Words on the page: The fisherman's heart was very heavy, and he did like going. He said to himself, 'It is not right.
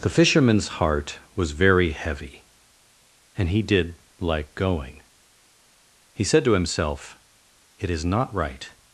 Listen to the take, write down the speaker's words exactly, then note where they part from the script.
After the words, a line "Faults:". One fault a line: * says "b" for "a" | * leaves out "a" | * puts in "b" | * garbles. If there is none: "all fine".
The fisherman's heart was very heavy, and he did like going. He said to himself, 'It is not right.
Faults:
all fine